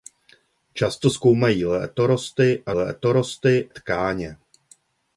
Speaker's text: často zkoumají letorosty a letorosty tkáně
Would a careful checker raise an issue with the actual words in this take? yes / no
no